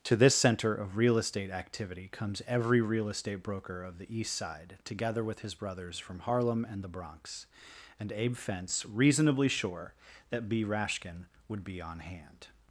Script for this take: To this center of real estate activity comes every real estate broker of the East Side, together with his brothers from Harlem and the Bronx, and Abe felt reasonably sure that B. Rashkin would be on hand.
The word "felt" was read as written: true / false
false